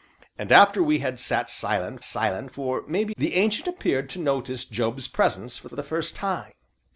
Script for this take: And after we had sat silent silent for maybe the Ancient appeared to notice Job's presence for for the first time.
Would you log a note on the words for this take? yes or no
no